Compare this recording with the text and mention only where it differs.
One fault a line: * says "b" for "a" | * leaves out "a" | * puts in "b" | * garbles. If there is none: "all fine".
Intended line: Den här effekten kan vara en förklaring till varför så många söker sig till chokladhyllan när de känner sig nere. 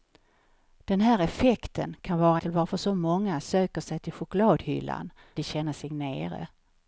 * leaves out "en förklaring"
* leaves out "när"